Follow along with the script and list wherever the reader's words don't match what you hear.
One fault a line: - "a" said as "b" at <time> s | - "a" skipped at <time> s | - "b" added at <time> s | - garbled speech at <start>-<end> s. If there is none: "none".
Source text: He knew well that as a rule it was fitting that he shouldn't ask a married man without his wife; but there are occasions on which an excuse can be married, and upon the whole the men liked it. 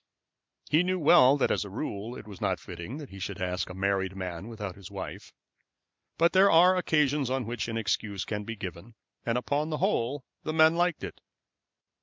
- "not" added at 2.4 s
- "shouldn't" said as "should" at 3.2 s
- "married" said as "given" at 8.6 s